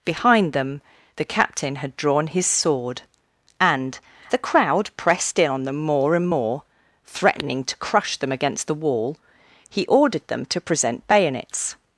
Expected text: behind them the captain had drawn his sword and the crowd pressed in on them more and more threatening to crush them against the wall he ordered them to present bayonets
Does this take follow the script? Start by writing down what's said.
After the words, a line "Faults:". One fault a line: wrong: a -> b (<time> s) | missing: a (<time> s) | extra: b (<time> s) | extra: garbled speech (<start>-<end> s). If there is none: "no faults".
behind them the captain had drawn his sword and the crowd pressed in on them more and more threatening to crush them against the wall he ordered them to present bayonets
Faults:
no faults